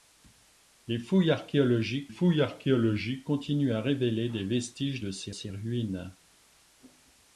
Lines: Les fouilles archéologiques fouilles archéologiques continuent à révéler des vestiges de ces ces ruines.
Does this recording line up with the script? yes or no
yes